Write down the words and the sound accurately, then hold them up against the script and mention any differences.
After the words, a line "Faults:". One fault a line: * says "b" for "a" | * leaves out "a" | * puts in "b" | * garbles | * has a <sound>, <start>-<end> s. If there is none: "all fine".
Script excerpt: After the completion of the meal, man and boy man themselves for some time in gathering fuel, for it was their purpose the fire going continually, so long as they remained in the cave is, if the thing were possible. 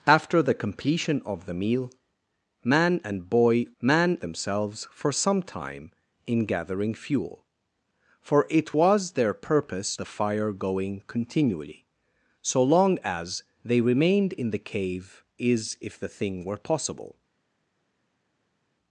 After the completion of the meal, man and boy man themselves for some time in gathering fuel, for it was their purpose the fire going continually, so long as they remained in the cave is, if the thing were possible.
Faults:
all fine